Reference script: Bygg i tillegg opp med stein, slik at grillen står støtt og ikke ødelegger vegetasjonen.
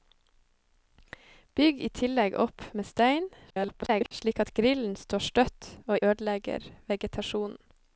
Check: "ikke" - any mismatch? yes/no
yes